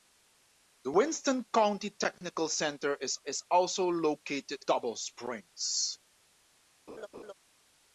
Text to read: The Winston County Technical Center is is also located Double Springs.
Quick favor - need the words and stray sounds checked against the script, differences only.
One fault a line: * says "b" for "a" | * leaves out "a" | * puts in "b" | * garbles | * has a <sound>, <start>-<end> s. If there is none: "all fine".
* has a laugh, 6.9-7.3 s